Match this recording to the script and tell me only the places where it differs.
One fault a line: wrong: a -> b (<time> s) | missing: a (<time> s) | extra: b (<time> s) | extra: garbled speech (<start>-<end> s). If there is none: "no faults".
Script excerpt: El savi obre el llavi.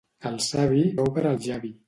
no faults